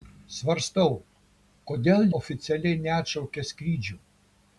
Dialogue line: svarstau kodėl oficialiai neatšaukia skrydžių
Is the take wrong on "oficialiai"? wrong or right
right